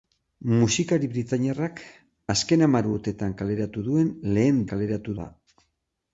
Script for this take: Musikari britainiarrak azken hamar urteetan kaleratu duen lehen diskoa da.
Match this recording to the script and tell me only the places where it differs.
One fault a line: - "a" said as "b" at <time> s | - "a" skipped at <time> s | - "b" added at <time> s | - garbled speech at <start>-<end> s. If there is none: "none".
- "diskoa" said as "kaleratu" at 4.7 s